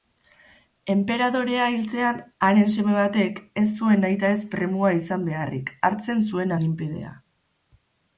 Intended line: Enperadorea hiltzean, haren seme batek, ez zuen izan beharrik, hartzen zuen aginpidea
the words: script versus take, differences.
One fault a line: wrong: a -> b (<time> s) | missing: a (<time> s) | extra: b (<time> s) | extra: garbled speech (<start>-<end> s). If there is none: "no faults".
extra: nahitaez premua (4.0 s)